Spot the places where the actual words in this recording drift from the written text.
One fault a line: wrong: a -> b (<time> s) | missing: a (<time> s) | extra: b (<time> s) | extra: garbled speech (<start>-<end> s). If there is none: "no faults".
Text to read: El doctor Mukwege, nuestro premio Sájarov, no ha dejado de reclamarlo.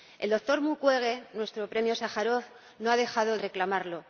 missing: de (3.4 s)